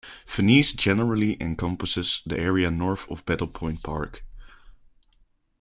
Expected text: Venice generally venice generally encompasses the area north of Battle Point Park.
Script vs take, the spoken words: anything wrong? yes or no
yes